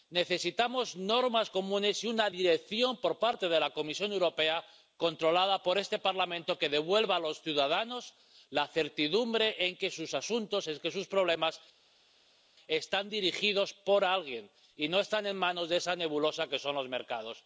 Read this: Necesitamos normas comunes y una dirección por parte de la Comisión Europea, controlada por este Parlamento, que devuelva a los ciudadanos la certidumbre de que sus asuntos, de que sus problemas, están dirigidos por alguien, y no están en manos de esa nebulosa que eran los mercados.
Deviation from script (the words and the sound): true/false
true